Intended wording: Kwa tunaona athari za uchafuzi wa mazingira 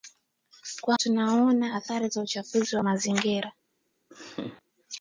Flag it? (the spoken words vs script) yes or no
no